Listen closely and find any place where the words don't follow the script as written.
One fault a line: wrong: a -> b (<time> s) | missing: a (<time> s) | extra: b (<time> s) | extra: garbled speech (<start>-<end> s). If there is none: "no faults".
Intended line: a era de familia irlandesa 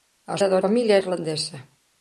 no faults